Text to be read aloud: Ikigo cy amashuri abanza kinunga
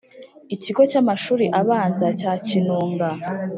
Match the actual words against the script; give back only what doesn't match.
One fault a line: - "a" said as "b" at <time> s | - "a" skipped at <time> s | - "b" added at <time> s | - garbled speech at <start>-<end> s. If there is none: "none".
- "cya" added at 2.2 s